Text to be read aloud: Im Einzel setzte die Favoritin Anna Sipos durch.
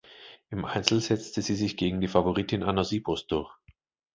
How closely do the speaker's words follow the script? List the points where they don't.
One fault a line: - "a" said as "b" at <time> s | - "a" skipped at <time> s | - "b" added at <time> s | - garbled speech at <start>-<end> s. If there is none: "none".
- "sie sich gegen" added at 1.4 s